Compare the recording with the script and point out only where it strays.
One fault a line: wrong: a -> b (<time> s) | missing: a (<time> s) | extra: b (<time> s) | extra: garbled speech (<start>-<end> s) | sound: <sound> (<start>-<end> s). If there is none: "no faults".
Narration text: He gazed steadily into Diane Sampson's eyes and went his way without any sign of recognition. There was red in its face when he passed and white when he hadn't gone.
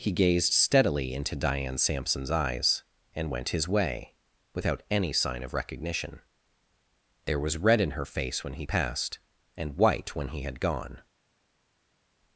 wrong: its -> her (7.9 s)
wrong: hadn't -> had (10.4 s)